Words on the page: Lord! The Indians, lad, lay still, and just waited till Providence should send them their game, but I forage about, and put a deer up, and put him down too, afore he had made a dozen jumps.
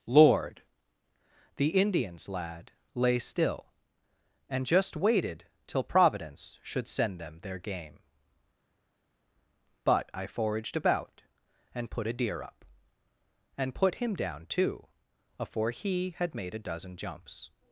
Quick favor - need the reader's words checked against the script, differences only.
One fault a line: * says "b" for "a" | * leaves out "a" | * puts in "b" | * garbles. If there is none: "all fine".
* says "foraged" for "forage"